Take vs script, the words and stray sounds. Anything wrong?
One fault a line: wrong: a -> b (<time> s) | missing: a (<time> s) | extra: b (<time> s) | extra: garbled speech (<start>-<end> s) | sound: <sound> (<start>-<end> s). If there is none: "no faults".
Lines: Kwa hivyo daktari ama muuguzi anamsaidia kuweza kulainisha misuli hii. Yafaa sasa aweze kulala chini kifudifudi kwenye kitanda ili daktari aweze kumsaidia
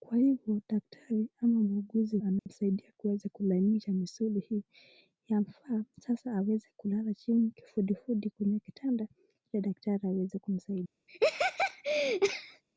sound: dropout (2.4-2.5 s)
sound: laugh (11.1-12.6 s)